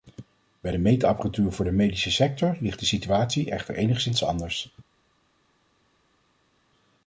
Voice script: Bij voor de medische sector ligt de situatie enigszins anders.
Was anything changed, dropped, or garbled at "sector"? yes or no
no